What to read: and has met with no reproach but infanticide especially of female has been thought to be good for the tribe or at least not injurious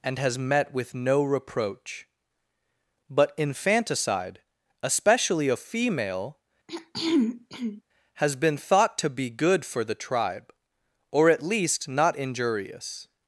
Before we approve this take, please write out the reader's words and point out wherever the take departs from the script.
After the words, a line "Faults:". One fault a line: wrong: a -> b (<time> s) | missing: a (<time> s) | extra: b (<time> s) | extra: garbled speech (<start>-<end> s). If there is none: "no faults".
and has met with no reproach but infanticide especially of female has been thought to be good for the tribe or at least not injurious
Faults:
no faults